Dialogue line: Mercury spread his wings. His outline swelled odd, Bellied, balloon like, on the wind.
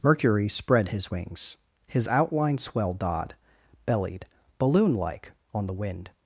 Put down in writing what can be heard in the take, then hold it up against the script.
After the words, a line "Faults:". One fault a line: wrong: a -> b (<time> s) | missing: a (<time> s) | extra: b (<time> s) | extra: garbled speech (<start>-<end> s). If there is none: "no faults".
Mercury spread his wings. His outline swelled odd, Bellied, balloon like, on the wind.
Faults:
no faults